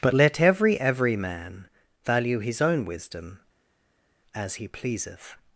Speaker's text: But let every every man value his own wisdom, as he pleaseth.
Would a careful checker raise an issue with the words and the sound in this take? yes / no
no